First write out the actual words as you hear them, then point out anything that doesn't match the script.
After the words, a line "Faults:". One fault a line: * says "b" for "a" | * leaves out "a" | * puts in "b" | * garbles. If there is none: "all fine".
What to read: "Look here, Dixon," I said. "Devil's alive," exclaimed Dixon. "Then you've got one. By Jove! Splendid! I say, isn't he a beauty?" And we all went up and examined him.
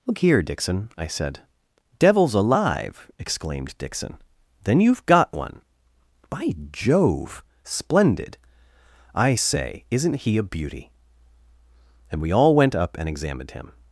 "Look here, Dixon," I said. "Devil's alive," exclaimed Dixon. "Then you've got one. By Jove! Splendid! I say, isn't he a beauty?" And we all went up and examined him.
Faults:
all fine